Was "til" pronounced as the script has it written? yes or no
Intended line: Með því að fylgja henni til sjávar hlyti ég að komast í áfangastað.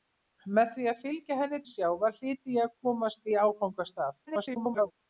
no